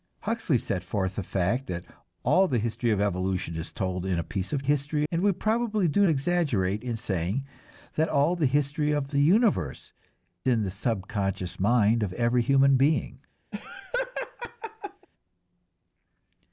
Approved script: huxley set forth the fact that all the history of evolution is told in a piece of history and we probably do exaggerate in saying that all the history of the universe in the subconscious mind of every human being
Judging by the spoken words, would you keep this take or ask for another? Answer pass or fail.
pass